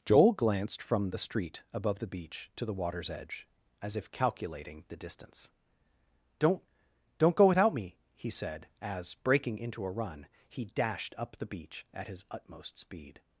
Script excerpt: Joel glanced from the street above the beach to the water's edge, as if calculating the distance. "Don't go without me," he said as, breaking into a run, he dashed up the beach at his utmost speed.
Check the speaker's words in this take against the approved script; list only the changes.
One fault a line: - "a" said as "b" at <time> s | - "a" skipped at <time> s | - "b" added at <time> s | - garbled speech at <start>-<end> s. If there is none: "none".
- "Don't" added at 7.2 s